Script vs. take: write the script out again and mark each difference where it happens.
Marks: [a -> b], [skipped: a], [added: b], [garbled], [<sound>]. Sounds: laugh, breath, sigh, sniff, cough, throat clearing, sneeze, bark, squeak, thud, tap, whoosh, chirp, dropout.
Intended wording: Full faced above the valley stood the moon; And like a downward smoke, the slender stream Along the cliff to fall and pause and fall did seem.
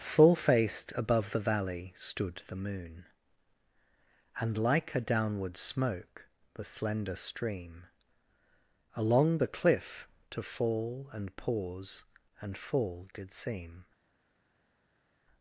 Full faced above the valley stood the moon; And like a downward smoke, the slender stream Along the cliff to fall and pause and fall did seem.